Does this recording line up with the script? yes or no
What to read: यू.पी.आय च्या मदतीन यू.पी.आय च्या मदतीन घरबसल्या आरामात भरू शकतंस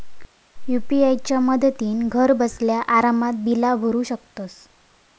no